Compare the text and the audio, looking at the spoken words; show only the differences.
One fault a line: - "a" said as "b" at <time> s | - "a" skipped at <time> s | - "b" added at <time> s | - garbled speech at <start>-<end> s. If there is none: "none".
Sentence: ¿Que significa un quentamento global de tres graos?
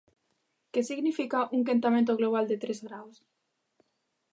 none